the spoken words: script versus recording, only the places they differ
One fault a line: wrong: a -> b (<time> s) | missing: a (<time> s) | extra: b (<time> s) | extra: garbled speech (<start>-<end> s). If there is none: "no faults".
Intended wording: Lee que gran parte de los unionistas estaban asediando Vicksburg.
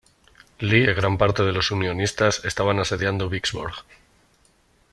no faults